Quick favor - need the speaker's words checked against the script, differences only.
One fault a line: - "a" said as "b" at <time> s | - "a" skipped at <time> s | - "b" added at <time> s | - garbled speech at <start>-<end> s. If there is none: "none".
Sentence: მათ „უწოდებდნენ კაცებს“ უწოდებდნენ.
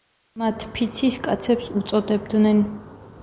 - "უწოდებდნენ" said as "ფიცის" at 0.8 s